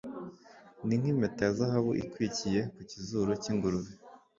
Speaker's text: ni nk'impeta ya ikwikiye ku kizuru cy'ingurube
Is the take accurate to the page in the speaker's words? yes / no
no